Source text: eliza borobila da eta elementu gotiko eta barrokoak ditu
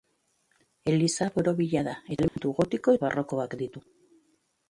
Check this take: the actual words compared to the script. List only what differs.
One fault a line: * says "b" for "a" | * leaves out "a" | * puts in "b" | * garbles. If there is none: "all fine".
* leaves out "eta"